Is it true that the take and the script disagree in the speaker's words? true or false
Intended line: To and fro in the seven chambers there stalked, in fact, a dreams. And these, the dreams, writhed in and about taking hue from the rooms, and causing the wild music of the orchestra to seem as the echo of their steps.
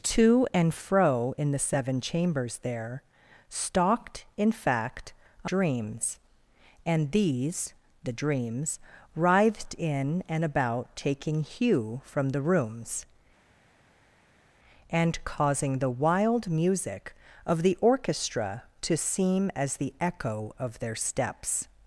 false